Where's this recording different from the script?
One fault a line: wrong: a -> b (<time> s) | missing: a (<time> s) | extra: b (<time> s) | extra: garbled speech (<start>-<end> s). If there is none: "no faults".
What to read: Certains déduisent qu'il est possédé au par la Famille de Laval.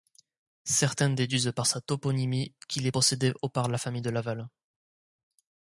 extra: par sa toponymie (1.6 s)